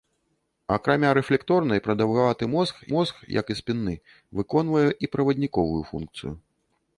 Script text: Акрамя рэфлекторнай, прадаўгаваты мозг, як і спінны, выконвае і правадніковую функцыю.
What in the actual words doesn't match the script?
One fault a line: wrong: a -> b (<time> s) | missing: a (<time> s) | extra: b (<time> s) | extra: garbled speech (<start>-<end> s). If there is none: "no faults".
extra: мозг (2.9 s)